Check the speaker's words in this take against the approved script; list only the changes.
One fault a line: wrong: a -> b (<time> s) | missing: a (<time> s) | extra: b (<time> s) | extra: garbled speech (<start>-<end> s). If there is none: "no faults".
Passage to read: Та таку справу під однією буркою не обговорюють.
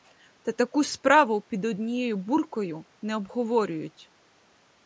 no faults